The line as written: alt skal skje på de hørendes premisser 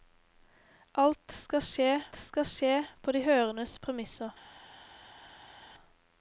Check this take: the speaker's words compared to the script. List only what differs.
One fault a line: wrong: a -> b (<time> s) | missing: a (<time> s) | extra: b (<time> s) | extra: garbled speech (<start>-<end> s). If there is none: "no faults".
extra: skal skje (2.1 s)